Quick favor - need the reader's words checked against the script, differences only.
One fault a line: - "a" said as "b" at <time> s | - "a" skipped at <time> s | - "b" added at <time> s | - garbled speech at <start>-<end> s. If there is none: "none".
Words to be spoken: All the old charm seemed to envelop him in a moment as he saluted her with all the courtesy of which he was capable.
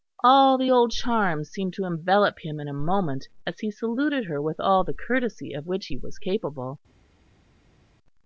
none